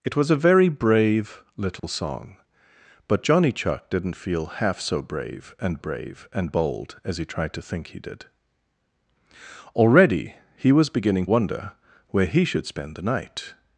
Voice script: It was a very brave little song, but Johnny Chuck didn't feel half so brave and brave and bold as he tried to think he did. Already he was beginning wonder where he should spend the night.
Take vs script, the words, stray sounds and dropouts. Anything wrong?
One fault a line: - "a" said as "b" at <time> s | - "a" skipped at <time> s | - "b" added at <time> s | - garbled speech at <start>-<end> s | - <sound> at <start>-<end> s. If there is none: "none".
- dropout at 1.8-1.8 s